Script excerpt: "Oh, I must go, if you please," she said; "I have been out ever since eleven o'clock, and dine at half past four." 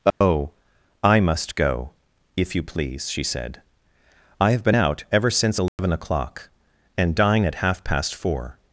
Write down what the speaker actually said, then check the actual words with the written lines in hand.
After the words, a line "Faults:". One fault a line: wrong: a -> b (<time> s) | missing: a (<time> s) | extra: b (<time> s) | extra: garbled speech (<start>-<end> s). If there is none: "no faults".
"Oh, I must go, if you please," she said; "I have been out ever since eleven o'clock, and dine at half past four."
Faults:
no faults